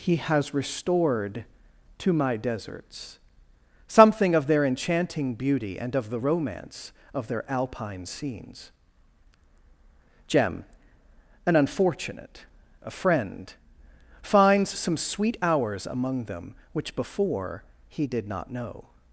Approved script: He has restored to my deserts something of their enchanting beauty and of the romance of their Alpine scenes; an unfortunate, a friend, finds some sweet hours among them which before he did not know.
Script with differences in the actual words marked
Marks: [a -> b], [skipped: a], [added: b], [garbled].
He has restored to my deserts something of their enchanting beauty and of the romance of their Alpine scenes; [added: jem] an unfortunate, a friend, finds some sweet hours among them which before he did not know.